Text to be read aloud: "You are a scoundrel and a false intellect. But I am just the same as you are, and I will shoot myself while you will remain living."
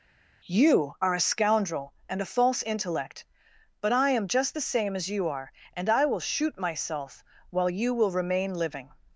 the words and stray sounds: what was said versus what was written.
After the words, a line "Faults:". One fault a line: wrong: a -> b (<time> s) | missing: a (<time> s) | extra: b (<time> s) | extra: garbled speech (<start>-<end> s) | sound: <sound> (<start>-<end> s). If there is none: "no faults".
"You are a scoundrel and a false intellect. But I am just the same as you are, and I will shoot myself while you will remain living."
Faults:
no faults